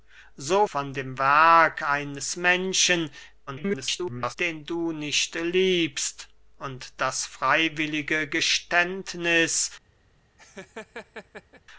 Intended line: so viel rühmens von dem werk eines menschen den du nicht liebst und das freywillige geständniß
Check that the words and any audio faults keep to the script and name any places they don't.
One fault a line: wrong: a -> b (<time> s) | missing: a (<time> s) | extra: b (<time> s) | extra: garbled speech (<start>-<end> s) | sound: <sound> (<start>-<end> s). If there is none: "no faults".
missing: viel rühmens (0.7 s)
extra: garbled speech (3.5-4.4 s)
sound: laugh (10.4-11.6 s)